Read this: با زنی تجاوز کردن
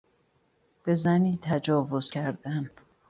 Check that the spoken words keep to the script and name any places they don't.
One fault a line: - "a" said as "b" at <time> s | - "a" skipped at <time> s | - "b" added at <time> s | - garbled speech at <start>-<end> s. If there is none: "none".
- "با" said as "به" at 0.8 s